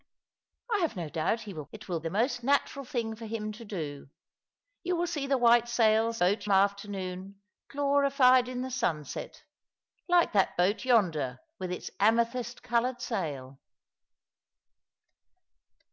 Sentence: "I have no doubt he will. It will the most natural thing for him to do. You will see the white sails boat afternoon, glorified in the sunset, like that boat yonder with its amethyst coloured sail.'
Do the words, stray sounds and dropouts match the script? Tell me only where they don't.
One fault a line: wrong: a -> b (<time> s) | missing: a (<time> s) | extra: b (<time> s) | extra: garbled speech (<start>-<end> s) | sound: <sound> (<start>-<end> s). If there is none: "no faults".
no faults